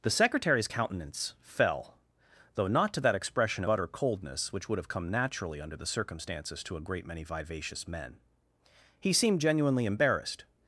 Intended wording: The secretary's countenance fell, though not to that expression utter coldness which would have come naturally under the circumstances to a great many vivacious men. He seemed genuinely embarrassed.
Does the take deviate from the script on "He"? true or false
false